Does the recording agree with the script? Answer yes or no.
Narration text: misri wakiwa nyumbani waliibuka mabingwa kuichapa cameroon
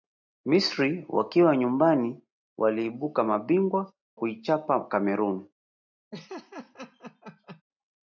yes